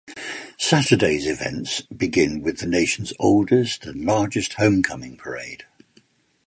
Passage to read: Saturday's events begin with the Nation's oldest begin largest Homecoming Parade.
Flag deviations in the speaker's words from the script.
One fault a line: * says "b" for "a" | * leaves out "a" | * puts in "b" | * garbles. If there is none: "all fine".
* says "and" for "begin"